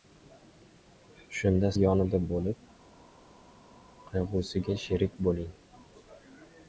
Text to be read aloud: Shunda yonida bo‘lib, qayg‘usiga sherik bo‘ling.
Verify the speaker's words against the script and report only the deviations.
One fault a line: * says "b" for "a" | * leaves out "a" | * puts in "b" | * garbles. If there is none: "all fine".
all fine